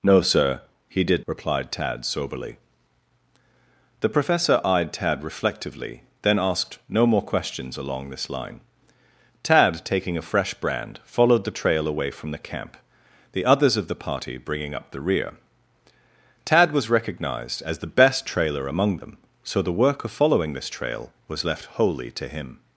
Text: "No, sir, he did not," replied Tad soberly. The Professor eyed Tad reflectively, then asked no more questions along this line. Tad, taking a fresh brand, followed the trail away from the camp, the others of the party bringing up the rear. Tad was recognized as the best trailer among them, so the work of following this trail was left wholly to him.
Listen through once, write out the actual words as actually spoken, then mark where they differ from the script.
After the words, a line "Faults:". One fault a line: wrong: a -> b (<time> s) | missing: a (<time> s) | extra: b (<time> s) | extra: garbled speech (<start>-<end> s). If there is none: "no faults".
"No, sir, he did," replied Tad soberly. The Professor eyed Tad reflectively, then asked no more questions along this line. Tad, taking a fresh brand, followed the trail away from the camp, the others of the party bringing up the rear. Tad was recognized as the best trailer among them, so the work of following this trail was left wholly to him.
Faults:
missing: not (1.2 s)